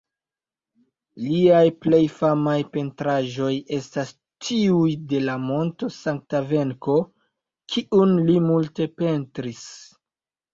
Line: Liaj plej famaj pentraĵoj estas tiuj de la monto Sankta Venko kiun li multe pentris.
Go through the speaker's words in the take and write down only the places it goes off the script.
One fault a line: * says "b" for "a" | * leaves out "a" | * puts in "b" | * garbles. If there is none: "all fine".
all fine